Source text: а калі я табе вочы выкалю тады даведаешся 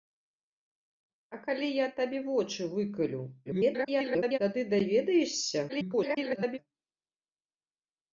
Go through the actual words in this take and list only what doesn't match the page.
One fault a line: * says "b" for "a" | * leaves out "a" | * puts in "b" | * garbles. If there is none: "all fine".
* garbles
* garbles